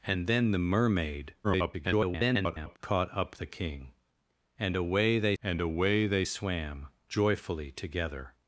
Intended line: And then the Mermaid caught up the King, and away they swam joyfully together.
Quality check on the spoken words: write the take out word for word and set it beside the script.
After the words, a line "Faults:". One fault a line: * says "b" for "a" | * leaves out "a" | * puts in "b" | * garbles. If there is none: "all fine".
And then the Mermaid [garbled] caught up the King, and away they and away they swam joyfully together.
Faults:
* garbles
* puts in "and away they"